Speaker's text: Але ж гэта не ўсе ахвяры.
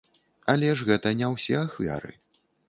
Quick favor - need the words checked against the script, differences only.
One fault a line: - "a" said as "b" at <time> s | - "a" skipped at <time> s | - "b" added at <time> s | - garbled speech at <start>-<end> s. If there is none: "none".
none